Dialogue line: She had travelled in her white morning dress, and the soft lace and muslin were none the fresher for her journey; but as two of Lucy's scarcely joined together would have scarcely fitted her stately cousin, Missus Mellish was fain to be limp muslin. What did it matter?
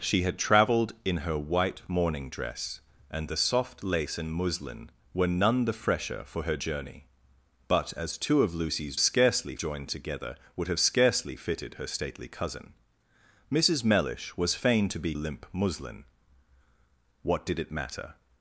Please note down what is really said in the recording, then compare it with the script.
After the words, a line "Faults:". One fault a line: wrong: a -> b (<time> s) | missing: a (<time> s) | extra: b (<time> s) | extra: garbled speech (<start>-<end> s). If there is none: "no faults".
She had travelled in her white morning dress, and the soft lace and muslin were none the fresher for her journey; but as two of Lucy's scarcely joined together would have scarcely fitted her stately cousin, Missus Mellish was fain to be limp muslin. What did it matter?
Faults:
no faults